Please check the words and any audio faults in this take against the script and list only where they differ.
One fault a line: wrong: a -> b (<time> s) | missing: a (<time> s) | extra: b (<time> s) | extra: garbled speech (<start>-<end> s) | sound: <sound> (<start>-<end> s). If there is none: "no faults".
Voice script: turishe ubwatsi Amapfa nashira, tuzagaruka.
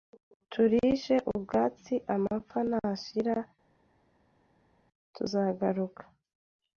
no faults